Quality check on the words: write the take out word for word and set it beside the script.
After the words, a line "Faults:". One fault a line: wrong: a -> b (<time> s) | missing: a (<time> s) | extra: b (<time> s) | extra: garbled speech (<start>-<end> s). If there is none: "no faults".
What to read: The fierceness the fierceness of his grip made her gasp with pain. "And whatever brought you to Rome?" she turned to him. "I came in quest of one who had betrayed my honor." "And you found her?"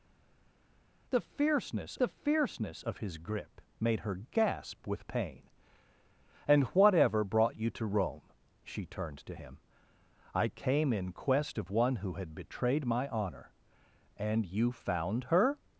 The fierceness the fierceness of his grip made her gasp with pain. "And whatever brought you to Rome?" she turned to him. "I came in quest of one who had betrayed my honor." "And you found her?"
Faults:
no faults